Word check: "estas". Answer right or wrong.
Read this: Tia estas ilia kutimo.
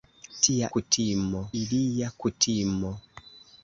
wrong